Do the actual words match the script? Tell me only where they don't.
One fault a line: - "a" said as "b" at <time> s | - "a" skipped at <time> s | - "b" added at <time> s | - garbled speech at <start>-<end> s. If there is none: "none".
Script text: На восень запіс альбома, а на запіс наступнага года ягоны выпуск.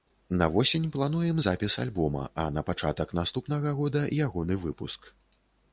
- "плануем" added at 0.9 s
- "запіс" said as "пачатак" at 2.7 s